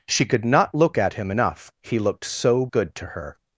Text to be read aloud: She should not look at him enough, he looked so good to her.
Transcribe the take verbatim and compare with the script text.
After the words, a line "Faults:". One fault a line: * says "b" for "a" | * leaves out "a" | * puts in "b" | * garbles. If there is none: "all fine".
She could not look at him enough, he looked so good to her.
Faults:
* says "could" for "should"